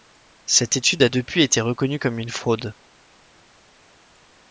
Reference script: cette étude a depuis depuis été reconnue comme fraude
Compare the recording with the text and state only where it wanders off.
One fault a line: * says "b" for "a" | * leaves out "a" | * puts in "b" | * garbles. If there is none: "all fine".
* leaves out "depuis"
* puts in "une"